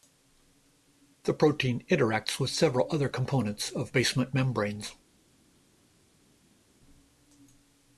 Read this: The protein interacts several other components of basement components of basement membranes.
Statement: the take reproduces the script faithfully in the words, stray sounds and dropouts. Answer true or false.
false